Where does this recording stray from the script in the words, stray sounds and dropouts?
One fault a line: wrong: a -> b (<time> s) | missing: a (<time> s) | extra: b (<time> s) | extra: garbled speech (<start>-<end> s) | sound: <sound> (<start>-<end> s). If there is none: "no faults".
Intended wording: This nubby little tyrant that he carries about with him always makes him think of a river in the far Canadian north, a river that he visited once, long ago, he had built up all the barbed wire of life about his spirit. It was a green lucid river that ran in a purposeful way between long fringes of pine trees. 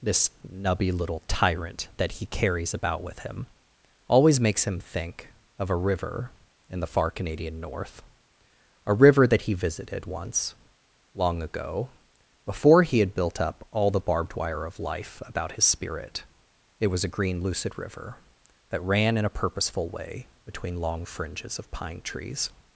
extra: before (12.4 s)